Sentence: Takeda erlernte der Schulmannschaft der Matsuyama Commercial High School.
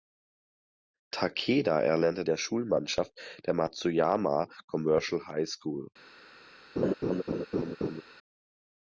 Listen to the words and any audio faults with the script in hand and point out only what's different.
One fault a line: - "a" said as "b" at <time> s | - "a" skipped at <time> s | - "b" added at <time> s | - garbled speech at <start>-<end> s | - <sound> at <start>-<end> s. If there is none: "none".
- laugh at 6.8-8.0 s